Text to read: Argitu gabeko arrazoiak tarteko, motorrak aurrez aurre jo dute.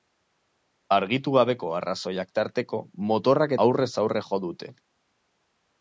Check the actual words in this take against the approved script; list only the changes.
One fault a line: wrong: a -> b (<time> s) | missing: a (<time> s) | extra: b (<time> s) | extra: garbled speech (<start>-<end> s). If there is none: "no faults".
no faults